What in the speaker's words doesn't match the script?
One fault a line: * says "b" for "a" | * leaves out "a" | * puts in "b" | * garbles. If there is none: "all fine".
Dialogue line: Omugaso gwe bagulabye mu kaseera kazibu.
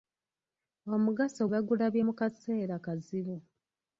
* leaves out "gwe"